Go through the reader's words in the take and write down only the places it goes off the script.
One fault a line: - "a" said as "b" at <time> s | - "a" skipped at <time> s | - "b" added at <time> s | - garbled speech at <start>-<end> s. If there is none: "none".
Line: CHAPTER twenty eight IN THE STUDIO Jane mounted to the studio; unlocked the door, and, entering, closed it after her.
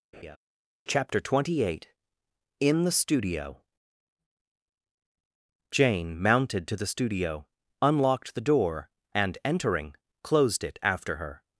none